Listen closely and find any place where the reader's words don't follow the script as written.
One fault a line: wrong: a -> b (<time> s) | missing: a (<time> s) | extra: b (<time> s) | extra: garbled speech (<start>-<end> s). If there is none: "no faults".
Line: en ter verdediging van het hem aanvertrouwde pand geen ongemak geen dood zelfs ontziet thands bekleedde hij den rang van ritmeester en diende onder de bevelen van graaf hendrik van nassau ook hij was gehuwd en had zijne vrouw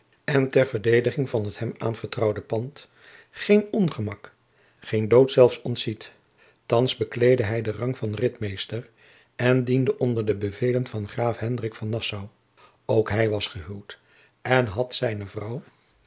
no faults